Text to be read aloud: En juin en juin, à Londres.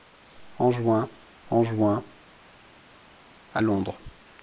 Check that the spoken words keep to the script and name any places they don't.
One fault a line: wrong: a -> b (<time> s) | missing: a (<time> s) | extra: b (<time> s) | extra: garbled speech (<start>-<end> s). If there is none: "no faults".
no faults